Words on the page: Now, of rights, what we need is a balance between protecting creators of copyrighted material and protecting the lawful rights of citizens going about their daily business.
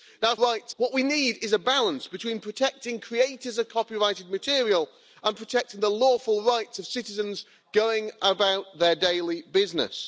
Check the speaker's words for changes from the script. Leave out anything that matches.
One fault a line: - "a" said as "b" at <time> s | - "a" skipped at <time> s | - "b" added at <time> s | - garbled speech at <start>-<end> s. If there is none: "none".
none